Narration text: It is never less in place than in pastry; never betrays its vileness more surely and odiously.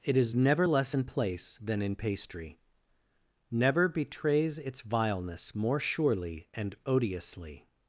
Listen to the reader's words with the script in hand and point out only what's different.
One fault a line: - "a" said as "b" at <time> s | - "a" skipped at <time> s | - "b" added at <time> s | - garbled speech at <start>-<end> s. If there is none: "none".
none